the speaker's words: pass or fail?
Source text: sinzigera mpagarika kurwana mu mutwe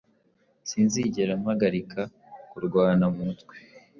pass